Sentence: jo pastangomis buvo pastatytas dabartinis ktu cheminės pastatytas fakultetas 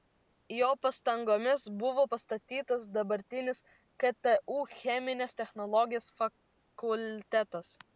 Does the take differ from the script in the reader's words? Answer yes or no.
yes